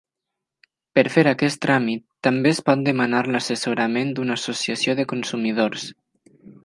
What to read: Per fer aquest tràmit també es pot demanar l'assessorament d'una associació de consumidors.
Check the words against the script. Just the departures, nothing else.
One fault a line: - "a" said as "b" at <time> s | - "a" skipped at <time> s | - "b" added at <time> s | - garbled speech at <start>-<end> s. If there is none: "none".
none